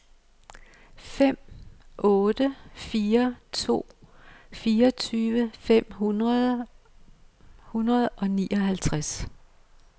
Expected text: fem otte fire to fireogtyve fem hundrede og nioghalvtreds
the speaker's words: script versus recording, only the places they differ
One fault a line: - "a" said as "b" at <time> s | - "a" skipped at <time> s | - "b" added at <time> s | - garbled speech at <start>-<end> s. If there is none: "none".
none